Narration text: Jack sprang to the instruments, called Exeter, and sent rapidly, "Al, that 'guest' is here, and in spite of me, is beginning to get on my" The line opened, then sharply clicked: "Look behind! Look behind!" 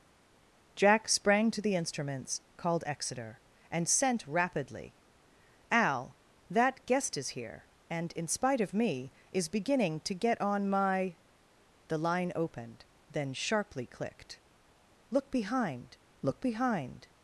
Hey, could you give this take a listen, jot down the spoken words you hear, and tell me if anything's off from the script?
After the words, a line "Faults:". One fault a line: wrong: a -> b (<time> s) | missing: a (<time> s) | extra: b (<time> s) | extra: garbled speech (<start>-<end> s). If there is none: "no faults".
Jack sprang to the instruments, called Exeter, and sent rapidly, "Al, that 'guest' is here, and in spite of me, is beginning to get on my" The line opened, then sharply clicked: "Look behind! Look behind!"
Faults:
no faults